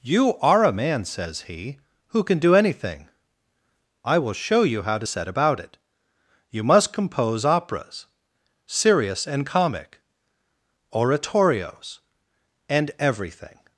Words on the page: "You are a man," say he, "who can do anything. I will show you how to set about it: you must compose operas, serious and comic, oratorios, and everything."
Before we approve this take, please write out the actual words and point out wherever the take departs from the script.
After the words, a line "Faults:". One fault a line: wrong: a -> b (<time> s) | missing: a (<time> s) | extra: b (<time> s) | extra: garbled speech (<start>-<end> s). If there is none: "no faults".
"You are a man," says he, "who can do anything. I will show you how to set about it: you must compose operas, serious and comic, oratorios, and everything."
Faults:
wrong: say -> says (1.1 s)